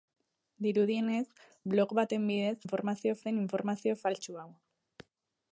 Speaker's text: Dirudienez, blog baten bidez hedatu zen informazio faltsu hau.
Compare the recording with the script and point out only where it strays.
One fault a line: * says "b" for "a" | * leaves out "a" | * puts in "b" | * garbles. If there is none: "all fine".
* says "informazio" for "hedatu"